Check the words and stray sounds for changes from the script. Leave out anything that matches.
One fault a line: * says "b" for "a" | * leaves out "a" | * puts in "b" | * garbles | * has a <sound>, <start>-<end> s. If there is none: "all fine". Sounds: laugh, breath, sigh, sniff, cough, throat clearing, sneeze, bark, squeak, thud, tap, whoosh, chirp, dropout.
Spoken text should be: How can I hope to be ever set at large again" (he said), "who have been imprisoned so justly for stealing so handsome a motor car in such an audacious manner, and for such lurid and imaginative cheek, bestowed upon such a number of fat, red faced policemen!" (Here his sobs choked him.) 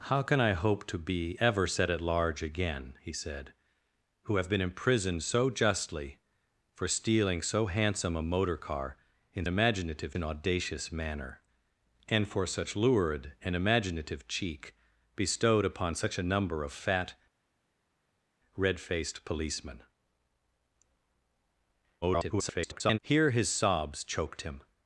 * says "imaginative" for "such"
* garbles